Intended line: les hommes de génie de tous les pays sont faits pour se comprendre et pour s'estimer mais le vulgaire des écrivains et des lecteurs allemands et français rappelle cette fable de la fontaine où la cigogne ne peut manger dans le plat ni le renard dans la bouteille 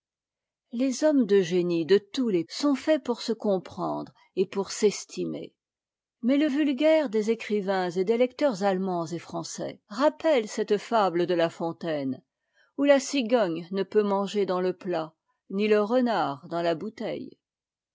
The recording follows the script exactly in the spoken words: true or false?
false